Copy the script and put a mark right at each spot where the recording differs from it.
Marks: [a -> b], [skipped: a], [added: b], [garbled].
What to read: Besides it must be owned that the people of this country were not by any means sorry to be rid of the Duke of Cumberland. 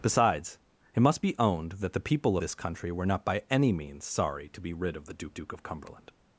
Besides it must be owned that the people [skipped: of] this country were not by any means sorry to be rid of the Duke [added: Duke] of Cumberland.